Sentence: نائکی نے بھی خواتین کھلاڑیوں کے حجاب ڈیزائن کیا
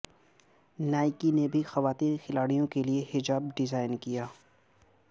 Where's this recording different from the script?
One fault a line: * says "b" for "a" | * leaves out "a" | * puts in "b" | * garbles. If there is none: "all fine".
* puts in "لیے"